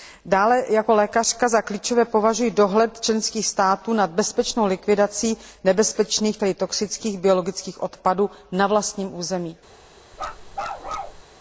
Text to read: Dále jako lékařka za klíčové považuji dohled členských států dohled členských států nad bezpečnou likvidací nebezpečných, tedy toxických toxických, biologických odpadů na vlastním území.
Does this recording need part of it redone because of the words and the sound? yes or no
yes